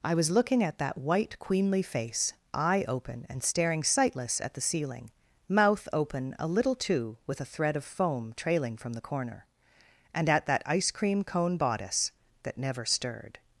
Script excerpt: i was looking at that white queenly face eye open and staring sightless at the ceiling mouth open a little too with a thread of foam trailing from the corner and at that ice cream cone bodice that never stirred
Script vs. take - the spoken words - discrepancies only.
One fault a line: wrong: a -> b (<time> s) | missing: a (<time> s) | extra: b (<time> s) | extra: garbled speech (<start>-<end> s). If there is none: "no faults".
no faults